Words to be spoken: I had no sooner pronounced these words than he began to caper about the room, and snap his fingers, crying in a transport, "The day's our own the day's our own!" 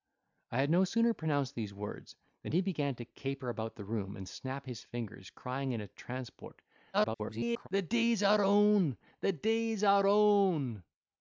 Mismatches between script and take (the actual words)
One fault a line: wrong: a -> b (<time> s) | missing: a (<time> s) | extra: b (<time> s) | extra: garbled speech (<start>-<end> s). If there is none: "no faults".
extra: garbled speech (6.9-7.7 s)